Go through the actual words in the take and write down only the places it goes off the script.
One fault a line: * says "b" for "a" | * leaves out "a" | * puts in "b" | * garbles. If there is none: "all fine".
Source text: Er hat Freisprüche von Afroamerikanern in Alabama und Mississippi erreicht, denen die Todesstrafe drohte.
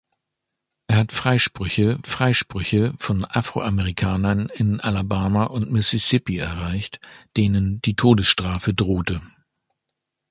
* puts in "Freisprüche"